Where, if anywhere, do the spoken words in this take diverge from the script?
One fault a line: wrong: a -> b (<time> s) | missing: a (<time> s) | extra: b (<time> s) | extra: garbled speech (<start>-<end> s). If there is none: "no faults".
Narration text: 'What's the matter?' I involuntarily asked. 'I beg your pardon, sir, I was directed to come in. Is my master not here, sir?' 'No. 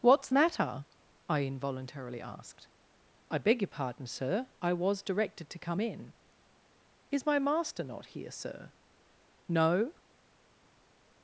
missing: the (0.3 s)